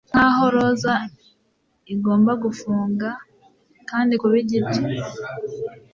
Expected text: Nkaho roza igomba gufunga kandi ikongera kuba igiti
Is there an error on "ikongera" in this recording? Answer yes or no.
yes